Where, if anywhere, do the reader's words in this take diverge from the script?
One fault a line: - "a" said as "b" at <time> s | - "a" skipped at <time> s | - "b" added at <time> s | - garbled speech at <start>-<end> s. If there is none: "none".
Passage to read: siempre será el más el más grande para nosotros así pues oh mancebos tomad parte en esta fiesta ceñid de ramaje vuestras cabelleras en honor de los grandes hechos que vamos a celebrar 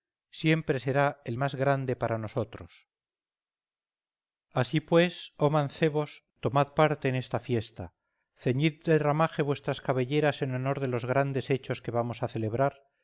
- "el más" skipped at 1.5 s